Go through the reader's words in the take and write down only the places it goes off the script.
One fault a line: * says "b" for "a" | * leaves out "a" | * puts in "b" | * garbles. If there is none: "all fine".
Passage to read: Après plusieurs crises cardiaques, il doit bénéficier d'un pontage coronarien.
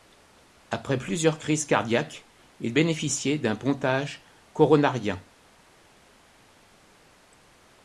* leaves out "doit"